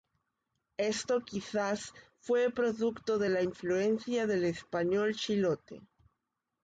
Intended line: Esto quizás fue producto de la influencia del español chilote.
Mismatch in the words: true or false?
false